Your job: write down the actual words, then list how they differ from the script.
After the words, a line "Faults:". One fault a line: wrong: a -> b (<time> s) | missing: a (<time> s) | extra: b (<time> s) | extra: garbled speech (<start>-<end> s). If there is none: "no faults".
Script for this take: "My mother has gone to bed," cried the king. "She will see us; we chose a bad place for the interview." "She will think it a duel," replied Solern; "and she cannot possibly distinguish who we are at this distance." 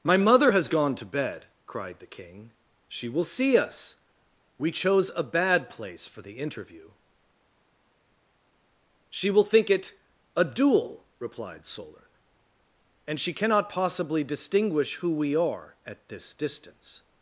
"My mother has gone to bed," cried the king. "She will see us; we chose a bad place for the interview." "She will think it a duel," replied Solern; "and she cannot possibly distinguish who we are at this distance."
Faults:
no faults